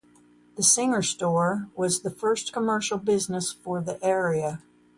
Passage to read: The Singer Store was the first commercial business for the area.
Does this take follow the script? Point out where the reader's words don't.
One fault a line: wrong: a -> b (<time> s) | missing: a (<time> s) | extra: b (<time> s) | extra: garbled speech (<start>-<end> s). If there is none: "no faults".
no faults